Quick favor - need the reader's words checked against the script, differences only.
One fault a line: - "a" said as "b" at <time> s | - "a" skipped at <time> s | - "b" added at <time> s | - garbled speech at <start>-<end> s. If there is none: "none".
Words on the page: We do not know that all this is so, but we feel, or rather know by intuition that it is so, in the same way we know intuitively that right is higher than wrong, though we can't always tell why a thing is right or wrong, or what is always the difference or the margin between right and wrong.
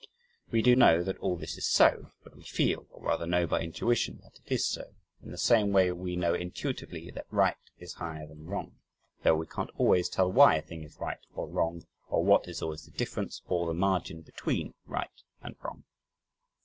- "not" skipped at 0.8 s